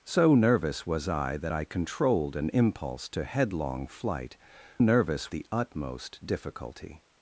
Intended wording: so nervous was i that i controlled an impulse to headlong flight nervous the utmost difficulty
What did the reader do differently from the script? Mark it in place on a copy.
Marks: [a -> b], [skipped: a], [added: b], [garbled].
so nervous was i that i controlled an impulse to headlong flight nervous the utmost difficulty